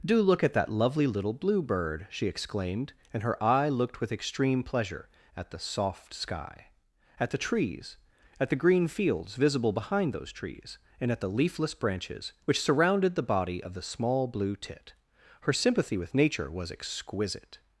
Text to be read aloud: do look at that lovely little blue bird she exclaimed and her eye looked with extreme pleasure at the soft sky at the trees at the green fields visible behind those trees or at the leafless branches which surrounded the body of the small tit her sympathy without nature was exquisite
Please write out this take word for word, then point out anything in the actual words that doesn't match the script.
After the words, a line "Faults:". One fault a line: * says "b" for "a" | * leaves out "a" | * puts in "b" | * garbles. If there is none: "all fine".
do look at that lovely little blue bird she exclaimed and her eye looked with extreme pleasure at the soft sky at the trees at the green fields visible behind those trees and at the leafless branches which surrounded the body of the small blue tit her sympathy with nature was exquisite
Faults:
* says "and" for "or"
* puts in "blue"
* says "with" for "without"